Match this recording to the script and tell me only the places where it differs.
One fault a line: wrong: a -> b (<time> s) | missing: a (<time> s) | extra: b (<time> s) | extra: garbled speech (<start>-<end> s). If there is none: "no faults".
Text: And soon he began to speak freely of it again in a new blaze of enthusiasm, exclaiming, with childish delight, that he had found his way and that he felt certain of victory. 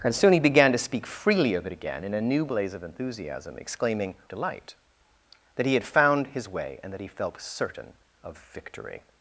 missing: with childish (4.2 s)